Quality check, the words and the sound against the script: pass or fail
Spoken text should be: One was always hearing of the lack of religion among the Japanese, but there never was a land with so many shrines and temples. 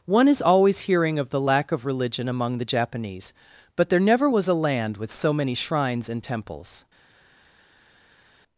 fail